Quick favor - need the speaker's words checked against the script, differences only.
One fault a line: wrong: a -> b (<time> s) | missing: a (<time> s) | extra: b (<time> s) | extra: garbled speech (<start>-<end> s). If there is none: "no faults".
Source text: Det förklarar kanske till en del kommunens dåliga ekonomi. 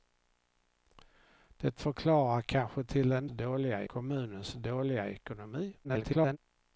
wrong: del -> dåliga (3.3 s)
extra: garbled speech (5.8-6.4 s)